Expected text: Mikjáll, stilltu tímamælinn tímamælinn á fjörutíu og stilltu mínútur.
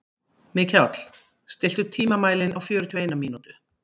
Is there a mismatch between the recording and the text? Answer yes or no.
yes